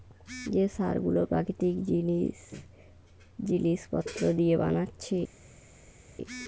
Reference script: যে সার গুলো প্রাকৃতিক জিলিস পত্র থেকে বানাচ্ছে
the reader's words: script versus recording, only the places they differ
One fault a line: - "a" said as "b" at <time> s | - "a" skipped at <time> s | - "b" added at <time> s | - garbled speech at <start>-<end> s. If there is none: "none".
- "থেকে" said as "দিয়ে" at 4.4 s